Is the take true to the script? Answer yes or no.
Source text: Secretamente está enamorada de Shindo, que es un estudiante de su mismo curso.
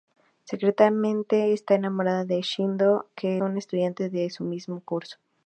no